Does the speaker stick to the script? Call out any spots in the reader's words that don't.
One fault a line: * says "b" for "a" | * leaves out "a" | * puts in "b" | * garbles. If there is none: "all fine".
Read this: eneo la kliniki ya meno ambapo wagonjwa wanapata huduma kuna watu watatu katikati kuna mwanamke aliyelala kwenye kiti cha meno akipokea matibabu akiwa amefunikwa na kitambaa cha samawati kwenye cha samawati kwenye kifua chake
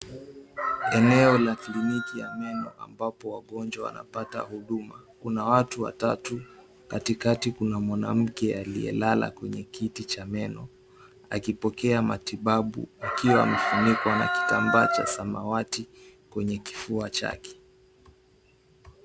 * leaves out "cha samawati kwenye"